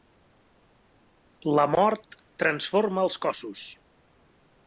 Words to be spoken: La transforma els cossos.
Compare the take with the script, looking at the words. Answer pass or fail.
fail